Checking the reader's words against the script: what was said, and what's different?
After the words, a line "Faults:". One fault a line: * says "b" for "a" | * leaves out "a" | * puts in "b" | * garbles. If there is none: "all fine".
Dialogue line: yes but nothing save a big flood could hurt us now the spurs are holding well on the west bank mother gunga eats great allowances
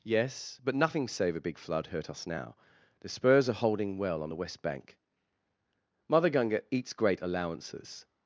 yes but nothing save a big flood hurt us now the spurs are holding well on the west bank mother gunga eats great allowances
Faults:
* leaves out "could"